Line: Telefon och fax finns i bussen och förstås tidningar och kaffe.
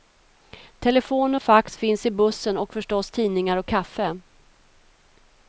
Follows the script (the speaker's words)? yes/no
yes